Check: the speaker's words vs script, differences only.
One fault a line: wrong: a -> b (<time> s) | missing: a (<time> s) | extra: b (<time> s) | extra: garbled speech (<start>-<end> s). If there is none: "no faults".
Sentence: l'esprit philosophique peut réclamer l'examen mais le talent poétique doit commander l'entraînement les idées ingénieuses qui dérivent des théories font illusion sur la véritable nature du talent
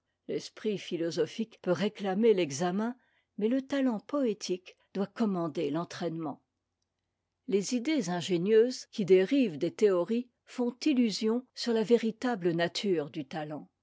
no faults